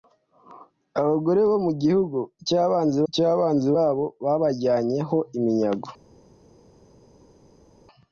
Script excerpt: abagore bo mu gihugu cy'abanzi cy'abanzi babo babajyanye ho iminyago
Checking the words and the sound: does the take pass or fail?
pass